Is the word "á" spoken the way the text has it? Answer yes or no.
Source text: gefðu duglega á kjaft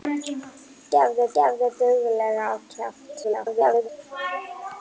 yes